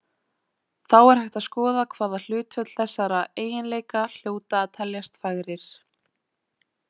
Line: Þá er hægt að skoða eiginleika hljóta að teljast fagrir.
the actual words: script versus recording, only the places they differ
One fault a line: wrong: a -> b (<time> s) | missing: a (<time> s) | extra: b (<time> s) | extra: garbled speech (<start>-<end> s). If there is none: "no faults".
extra: hvaða hlutföll þessara (1.9 s)